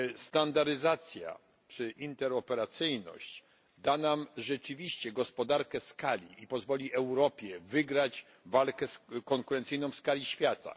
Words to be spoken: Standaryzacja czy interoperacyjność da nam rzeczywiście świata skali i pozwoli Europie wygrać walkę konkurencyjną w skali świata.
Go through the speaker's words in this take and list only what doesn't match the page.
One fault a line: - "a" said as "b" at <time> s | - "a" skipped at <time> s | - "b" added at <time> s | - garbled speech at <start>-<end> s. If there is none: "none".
- "świata" said as "gospodarkę" at 5.1 s